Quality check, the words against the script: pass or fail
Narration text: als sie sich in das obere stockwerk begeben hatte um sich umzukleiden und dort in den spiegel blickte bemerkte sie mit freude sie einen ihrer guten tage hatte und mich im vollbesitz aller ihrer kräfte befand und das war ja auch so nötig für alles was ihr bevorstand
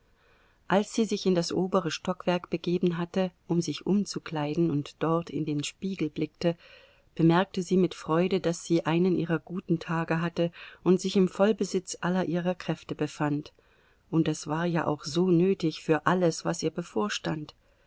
fail